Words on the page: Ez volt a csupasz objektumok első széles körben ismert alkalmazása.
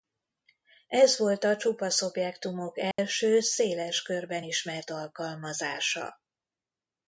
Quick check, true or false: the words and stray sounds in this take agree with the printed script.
false